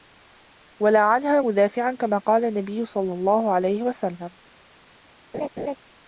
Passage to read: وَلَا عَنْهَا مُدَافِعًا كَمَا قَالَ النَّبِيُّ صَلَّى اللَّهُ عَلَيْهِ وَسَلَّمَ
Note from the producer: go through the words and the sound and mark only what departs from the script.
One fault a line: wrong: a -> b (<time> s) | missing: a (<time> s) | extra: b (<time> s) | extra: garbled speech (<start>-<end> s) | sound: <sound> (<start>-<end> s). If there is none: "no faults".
sound: laugh (5.3-5.8 s)